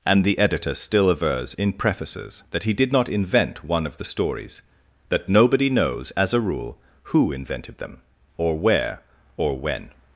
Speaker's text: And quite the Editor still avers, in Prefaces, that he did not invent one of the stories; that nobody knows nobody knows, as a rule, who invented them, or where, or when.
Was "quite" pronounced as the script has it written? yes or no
no